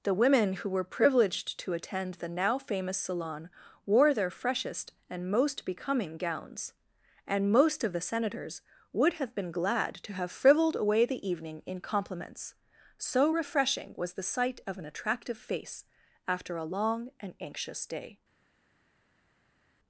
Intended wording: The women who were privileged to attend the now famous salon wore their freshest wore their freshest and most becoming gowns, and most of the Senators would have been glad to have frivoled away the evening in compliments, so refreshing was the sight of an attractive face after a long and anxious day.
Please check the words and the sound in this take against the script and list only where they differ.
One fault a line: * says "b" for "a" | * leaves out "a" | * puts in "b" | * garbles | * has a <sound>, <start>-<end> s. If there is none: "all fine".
* leaves out "wore their freshest"